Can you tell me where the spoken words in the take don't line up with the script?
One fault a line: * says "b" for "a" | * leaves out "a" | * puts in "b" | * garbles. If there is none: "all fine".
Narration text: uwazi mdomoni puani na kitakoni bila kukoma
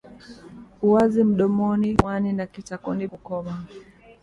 * leaves out "bila"